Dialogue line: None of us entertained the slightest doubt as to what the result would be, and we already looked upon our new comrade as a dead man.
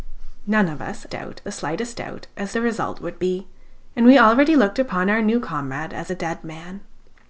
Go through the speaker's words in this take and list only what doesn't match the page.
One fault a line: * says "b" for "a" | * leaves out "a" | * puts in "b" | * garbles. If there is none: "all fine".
* says "doubt" for "entertained"
* leaves out "to what"